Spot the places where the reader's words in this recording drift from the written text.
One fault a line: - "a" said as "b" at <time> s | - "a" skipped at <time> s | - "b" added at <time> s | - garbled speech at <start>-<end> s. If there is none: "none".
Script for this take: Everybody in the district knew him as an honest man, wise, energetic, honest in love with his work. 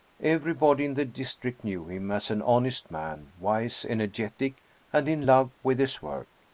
- "honest" said as "and" at 4.9 s